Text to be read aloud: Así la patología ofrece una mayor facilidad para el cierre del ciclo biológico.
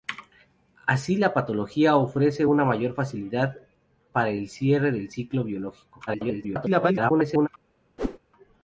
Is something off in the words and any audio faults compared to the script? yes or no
yes